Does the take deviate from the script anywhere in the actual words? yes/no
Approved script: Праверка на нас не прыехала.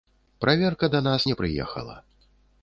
yes